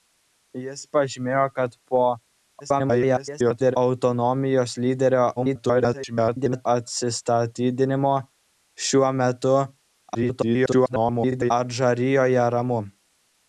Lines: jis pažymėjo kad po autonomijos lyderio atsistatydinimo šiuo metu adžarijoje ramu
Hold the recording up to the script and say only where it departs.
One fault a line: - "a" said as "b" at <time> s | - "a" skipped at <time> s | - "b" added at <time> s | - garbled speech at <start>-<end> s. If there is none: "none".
- garbled speech at 2.6-3.8 s
- garbled speech at 5.4-6.7 s
- garbled speech at 10.1-11.5 s